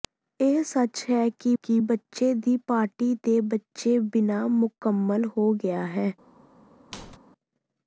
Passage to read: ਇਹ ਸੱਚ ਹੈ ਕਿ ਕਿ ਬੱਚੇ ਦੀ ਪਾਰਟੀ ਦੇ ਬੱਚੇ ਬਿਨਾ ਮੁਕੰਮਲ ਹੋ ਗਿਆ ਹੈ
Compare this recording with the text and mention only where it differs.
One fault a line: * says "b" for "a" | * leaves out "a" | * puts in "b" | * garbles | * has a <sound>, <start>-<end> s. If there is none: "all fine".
* has a squeak, 6.9-7.2 s